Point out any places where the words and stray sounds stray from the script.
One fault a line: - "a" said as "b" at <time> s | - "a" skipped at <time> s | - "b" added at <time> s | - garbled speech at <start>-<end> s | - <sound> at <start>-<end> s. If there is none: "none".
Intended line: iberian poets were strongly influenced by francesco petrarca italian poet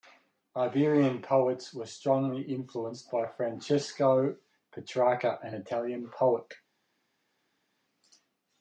- "an" added at 5.4 s